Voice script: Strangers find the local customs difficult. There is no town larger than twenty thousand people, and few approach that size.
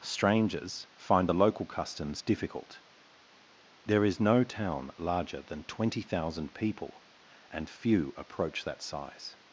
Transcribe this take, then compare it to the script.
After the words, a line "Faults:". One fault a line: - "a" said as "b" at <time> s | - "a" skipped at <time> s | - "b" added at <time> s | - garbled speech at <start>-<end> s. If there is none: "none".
Strangers find the local customs difficult. There is no town larger than twenty thousand people, and few approach that size.
Faults:
none